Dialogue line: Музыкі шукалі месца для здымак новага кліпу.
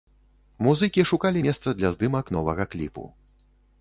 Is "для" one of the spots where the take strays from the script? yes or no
no